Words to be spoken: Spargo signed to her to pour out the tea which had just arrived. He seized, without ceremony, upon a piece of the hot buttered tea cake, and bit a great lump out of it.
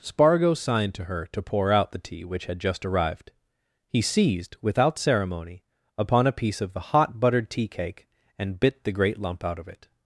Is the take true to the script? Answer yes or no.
no